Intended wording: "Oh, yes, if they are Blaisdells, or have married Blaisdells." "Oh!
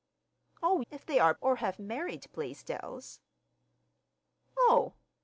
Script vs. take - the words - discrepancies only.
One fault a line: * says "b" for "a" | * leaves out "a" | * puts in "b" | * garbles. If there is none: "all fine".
* leaves out "yes"
* leaves out "Blaisdells"